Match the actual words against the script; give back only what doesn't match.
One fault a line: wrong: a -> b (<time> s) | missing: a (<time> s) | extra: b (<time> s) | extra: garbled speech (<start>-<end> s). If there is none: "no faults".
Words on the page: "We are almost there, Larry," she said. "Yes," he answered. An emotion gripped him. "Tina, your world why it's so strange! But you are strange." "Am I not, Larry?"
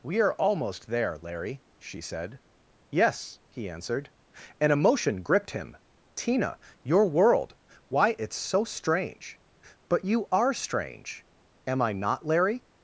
no faults